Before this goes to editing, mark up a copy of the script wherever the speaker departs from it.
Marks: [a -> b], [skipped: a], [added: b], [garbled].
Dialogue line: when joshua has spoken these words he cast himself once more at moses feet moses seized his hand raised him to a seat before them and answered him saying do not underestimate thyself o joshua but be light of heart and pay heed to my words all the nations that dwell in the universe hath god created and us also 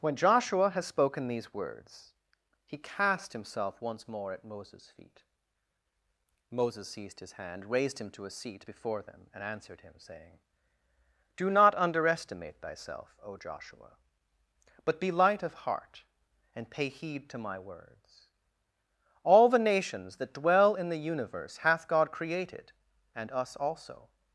when joshua has spoken these words he cast himself once more at moses feet moses seized his hand raised him to a seat before them and answered him saying do not underestimate thyself o joshua but be light of heart and pay heed to my words all the nations that dwell in the universe hath god created and us also